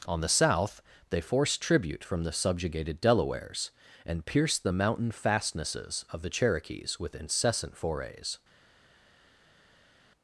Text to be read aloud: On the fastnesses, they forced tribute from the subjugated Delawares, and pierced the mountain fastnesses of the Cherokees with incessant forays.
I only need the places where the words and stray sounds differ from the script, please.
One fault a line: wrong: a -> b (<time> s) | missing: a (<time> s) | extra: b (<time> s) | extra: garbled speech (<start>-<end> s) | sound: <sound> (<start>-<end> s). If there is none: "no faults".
wrong: fastnesses -> south (0.3 s)